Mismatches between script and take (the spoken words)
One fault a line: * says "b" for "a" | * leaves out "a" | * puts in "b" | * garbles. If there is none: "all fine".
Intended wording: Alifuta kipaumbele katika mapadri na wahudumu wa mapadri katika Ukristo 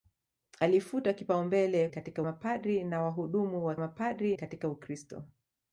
all fine